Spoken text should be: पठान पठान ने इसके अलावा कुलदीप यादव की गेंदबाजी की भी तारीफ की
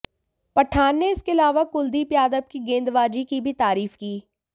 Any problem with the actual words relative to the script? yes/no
yes